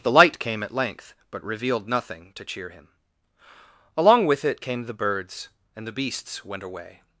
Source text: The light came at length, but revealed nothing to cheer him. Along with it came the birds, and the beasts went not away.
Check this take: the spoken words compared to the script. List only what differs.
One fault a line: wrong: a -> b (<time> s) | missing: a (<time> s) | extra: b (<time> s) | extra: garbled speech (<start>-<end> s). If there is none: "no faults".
missing: not (6.6 s)